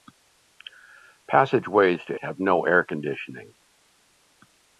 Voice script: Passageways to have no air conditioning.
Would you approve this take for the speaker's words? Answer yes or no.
yes